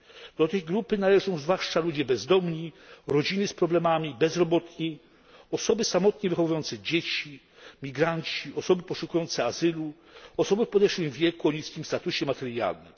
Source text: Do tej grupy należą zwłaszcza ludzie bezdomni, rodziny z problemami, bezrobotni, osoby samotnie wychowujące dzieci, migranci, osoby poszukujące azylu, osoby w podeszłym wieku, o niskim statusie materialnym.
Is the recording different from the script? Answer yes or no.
no